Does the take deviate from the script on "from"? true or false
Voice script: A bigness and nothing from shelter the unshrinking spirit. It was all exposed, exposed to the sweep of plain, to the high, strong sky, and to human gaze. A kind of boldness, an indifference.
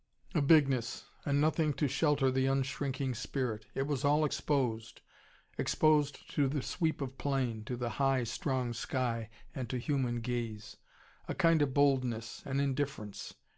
true